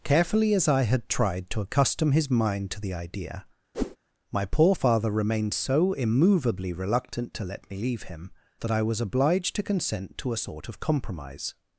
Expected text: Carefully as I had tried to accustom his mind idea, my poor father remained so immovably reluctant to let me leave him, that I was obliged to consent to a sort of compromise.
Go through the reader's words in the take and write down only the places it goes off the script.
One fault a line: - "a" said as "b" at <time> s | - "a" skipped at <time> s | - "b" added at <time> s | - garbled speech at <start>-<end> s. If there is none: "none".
- "to the" added at 2.7 s